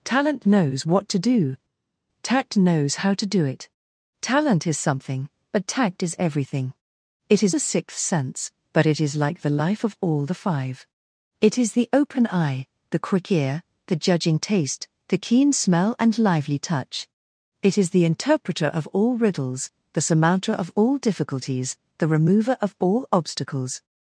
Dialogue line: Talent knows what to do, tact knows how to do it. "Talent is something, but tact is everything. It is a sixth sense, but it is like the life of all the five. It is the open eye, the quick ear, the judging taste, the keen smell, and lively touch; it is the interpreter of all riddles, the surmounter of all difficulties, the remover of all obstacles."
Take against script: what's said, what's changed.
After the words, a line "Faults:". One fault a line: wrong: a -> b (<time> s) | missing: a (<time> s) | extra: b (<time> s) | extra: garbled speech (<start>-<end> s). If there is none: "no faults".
Talent knows what to do, tact knows how to do it. "Talent is something, but tact is everything. It is a sixth sense, but it is like the life of all the five. It is the open eye, the quick ear, the judging taste, the keen smell, and lively touch; it is the interpreter of all riddles, the surmounter of all difficulties, the remover of all obstacles."
Faults:
no faults